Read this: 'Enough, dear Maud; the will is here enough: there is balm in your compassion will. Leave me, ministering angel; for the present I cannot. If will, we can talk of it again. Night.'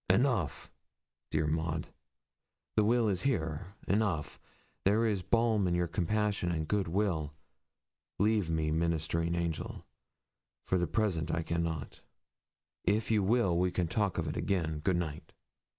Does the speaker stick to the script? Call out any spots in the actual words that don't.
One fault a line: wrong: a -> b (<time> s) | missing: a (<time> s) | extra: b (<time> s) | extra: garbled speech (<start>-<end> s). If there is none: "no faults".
extra: and good (6.5 s)
extra: you (13.1 s)
extra: Good (14.8 s)